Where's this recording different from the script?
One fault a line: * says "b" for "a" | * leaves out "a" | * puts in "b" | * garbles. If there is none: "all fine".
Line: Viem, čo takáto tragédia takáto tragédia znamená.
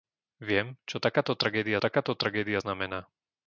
all fine